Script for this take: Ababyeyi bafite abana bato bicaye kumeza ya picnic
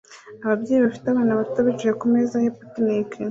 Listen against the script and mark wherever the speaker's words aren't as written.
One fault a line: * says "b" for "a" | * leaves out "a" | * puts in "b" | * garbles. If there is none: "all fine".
all fine